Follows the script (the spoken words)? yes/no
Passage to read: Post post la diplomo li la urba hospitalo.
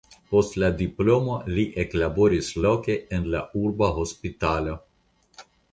no